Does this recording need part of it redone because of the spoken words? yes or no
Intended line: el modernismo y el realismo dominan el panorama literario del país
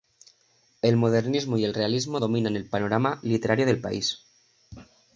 no